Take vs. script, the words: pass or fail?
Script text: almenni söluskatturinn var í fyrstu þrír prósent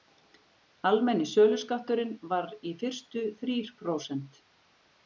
pass